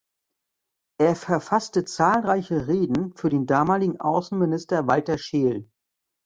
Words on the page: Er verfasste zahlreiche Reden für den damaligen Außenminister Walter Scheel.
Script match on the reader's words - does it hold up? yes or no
yes